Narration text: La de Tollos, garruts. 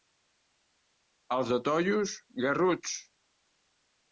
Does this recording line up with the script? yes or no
no